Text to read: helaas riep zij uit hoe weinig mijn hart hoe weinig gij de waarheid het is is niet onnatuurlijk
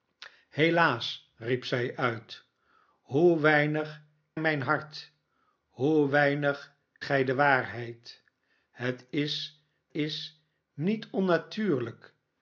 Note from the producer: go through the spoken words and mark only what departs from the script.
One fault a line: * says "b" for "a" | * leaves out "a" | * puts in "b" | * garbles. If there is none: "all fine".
all fine